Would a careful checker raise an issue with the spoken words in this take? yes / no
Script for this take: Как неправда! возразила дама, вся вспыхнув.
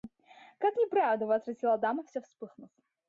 no